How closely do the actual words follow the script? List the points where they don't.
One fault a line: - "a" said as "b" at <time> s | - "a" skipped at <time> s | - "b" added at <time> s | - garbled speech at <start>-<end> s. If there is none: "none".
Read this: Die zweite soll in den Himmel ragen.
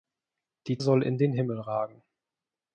- "zweite" skipped at 0.8 s